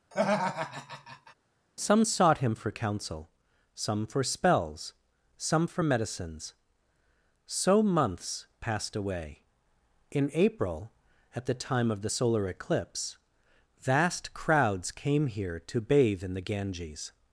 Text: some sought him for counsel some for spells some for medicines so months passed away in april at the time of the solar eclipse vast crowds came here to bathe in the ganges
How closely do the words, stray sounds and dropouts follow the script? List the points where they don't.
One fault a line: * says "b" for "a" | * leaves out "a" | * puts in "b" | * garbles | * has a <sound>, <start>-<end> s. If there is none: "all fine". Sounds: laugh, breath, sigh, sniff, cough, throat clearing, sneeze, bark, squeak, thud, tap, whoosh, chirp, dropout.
* has a laugh, 0.1-1.3 s